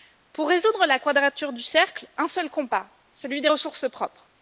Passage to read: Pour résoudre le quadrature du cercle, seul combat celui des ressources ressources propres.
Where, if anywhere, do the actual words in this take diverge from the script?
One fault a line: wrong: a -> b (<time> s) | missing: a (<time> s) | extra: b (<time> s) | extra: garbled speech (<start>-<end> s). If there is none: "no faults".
wrong: le -> la (0.8 s)
extra: un (2.2 s)
missing: ressources (3.9 s)